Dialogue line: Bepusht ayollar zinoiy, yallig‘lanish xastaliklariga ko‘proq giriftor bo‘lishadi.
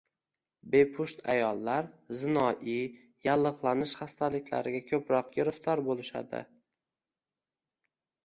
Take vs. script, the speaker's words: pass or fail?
pass